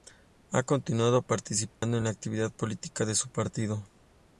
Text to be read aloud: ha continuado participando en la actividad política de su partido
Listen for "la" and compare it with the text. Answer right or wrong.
right